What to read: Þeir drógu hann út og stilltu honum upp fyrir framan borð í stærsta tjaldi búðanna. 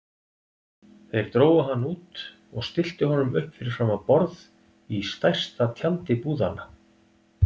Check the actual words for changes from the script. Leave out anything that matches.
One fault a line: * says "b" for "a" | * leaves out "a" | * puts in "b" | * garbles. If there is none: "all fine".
all fine